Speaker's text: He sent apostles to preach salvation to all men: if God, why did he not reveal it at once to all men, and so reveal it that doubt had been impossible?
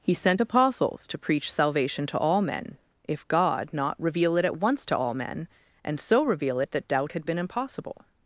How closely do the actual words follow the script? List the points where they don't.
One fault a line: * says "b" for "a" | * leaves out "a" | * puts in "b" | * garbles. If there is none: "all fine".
* leaves out "why did he"